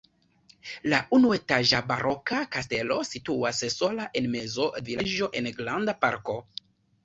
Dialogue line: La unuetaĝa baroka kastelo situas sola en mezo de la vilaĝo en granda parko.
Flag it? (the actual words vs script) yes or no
yes